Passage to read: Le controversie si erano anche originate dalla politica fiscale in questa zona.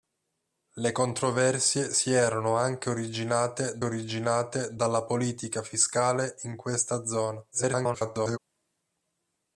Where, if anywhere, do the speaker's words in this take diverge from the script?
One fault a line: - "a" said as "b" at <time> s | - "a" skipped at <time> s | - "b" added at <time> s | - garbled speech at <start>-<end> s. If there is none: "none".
- "originate" added at 3.8 s
- garbled speech at 7.5-8.4 s